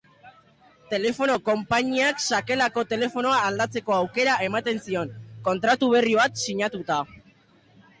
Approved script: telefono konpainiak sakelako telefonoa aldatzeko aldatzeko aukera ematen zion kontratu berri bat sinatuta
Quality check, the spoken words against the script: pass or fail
fail